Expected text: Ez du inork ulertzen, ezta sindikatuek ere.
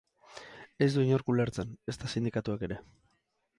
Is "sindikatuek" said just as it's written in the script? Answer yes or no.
yes